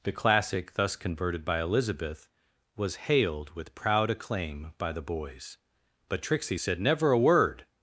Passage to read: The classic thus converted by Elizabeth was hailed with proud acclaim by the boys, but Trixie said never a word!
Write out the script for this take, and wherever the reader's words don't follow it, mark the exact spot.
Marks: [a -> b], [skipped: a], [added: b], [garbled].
The classic thus converted by Elizabeth was hailed with proud acclaim by the boys, but Trixie said never a word!